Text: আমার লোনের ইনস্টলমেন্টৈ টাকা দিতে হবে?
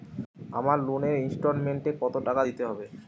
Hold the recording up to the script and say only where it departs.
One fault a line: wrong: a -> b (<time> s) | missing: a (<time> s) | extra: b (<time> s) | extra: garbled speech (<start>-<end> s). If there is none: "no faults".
extra: কত (2.0 s)